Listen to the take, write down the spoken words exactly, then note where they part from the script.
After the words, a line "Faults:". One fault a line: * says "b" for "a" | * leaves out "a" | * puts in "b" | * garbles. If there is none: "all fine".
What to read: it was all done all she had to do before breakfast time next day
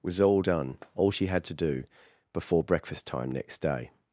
was all done all she had to do before breakfast time next day
Faults:
* leaves out "it"